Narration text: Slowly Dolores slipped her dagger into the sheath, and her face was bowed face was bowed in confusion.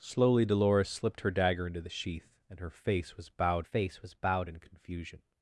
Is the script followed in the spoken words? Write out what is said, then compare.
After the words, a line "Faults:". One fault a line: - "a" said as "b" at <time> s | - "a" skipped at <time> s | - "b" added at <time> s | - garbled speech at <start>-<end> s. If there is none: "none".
Slowly Dolores slipped her dagger into the sheath, and her face was bowed face was bowed in confusion.
Faults:
none